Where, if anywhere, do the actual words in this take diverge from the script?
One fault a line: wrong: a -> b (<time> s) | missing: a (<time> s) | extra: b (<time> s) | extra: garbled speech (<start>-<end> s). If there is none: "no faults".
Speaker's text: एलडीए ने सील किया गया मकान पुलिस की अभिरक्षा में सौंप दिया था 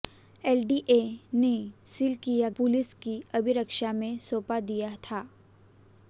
missing: गया मकान (2.5 s)